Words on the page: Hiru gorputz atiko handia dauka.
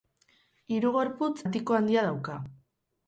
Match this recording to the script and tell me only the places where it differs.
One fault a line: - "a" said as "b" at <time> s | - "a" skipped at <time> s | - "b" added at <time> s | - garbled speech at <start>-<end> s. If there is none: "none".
none